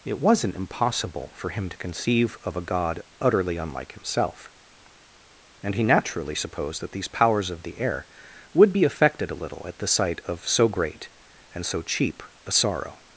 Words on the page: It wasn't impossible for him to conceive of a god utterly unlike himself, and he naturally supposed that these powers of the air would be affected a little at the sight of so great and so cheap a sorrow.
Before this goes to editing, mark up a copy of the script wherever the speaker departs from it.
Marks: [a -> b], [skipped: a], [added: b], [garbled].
It wasn't impossible for him to conceive of a god utterly unlike himself, and he naturally supposed that these powers of the air would be affected a little at the sight of so great and so cheap a sorrow.